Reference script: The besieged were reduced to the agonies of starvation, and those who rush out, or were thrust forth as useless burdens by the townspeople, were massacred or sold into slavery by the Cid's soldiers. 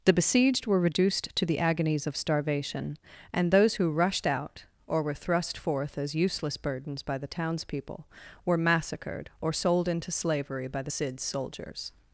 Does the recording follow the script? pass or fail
fail